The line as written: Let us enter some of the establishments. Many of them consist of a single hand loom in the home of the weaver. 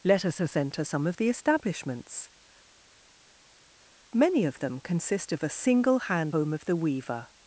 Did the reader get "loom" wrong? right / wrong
wrong